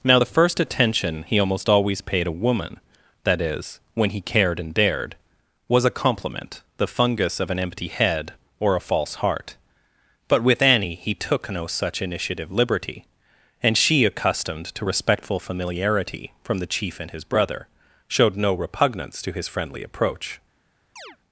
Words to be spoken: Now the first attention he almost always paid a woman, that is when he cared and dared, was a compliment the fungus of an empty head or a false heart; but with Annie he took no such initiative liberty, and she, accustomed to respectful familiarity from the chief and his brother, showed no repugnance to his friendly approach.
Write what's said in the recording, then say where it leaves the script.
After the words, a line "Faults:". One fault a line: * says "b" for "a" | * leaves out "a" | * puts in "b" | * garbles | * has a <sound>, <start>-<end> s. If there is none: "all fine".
Now the first attention he almost always paid a woman, that is when he cared and dared, was a compliment the fungus of an empty head or a false heart; but with Annie he took no such initiative liberty, and she, accustomed to respectful familiarity from the chief and his brother, showed no repugnance to his friendly approach.
Faults:
* has a chirp, 21.0-21.2 s